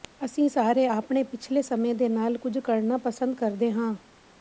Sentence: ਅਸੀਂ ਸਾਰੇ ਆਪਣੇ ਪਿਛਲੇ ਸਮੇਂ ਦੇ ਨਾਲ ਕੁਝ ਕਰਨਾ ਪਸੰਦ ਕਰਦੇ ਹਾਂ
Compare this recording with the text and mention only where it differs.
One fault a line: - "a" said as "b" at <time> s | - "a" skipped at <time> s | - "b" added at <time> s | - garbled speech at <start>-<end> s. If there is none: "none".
none